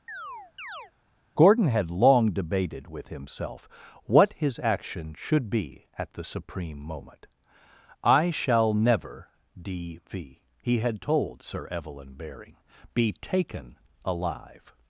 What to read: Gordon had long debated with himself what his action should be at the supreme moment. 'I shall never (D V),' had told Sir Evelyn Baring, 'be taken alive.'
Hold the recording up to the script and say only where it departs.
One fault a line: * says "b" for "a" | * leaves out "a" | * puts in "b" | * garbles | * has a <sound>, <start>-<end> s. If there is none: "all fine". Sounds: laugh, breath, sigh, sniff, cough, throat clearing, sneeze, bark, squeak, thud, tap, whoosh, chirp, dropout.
* has a chirp, 0.1-0.9 s
* puts in "he"